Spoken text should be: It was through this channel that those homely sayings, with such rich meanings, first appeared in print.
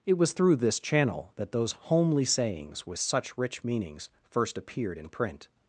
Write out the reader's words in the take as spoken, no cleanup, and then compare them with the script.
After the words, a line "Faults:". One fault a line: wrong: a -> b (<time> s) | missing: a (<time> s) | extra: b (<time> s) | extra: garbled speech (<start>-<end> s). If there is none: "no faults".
It was through this channel that those homely sayings, with such rich meanings, first appeared in print.
Faults:
no faults